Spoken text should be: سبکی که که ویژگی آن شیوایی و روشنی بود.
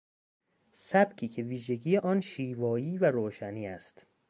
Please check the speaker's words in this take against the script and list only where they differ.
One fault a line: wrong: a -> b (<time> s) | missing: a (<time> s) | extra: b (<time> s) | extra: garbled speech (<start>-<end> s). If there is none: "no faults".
missing: که (1.4 s)
wrong: بود -> است (3.7 s)